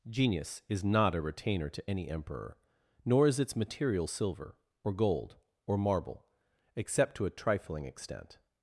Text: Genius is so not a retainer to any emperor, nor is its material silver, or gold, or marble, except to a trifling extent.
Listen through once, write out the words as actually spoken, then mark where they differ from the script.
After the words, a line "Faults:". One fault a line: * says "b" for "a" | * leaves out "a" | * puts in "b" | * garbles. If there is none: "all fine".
Genius is not a retainer to any emperor, nor is its material silver, or gold, or marble, except to a trifling extent.
Faults:
* leaves out "so"